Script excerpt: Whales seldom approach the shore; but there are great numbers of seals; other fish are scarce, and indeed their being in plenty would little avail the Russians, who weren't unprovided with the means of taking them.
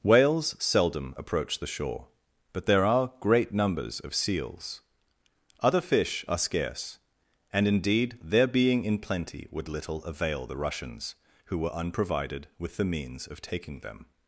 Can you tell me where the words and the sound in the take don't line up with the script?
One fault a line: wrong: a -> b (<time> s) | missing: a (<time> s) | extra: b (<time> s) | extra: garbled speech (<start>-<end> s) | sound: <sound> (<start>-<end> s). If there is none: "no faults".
wrong: weren't -> were (11.6 s)